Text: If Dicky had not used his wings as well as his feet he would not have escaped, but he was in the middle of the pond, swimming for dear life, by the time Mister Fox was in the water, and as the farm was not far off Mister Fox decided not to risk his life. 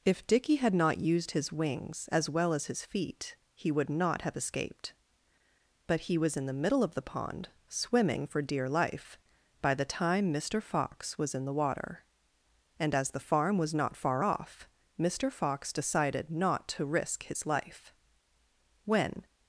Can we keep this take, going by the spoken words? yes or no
no